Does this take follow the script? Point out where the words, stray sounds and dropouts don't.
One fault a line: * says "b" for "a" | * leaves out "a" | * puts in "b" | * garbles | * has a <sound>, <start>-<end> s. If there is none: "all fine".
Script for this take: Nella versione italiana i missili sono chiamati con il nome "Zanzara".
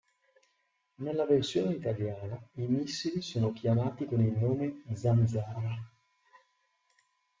all fine